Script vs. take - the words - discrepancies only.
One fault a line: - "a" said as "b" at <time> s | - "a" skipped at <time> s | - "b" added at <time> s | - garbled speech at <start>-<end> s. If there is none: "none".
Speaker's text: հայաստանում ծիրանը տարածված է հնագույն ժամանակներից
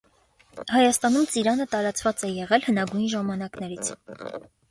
- "եղել" added at 2.4 s